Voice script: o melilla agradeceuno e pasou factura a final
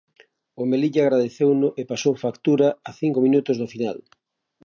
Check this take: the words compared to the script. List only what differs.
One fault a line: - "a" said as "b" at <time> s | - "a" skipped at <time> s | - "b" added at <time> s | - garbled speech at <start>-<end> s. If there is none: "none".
- "cinco minutos do" added at 3.0 s